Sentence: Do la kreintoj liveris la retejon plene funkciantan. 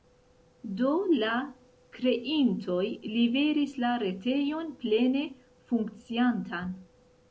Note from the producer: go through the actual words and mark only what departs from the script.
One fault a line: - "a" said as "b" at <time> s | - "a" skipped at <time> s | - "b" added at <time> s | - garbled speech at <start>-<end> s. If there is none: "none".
none